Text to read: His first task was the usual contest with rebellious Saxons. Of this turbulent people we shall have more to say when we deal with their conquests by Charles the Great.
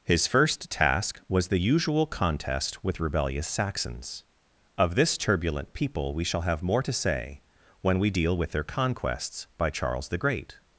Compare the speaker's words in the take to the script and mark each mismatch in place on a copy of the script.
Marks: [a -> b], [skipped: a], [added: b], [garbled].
His first task was the usual contest with rebellious Saxons. Of this turbulent people we shall have more to say when we deal with their conquests by Charles the Great.